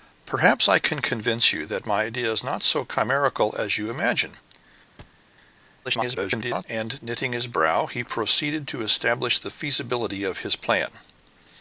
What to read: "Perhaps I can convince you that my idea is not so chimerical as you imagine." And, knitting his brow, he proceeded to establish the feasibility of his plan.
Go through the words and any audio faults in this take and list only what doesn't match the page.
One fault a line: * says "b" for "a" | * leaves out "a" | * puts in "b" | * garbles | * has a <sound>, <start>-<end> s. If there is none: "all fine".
* has a thud, 5.0-5.2 s
* garbles